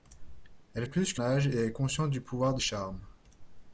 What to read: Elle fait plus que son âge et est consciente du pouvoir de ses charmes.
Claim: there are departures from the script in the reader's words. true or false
true